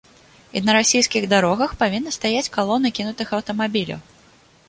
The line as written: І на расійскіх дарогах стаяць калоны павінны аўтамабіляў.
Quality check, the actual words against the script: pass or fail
fail